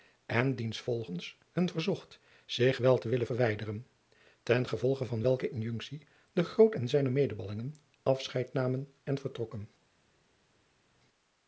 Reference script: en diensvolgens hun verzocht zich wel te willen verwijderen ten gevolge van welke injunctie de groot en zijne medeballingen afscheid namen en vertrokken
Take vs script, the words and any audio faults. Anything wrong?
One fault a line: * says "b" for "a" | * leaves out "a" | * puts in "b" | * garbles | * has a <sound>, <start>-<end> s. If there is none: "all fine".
all fine